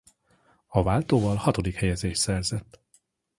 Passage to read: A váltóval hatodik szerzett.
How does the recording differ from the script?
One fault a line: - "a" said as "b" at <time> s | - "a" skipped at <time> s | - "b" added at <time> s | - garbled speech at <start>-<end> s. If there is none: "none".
- "helyezést" added at 1.8 s